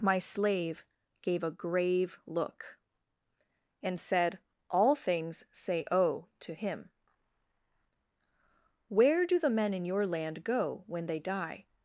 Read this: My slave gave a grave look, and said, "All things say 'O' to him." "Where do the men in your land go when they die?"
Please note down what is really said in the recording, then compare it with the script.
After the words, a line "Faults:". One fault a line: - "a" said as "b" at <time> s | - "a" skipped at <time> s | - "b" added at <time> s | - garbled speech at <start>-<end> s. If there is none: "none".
My slave gave a grave look, and said, "All things say 'O' to him." "Where do the men in your land go when they die?"
Faults:
none